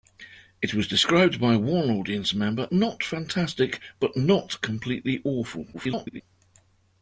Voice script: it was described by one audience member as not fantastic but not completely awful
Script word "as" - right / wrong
wrong